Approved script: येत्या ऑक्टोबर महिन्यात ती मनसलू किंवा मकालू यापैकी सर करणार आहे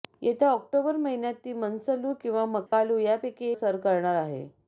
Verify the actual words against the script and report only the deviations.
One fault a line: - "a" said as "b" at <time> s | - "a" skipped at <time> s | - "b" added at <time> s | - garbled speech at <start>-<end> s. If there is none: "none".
none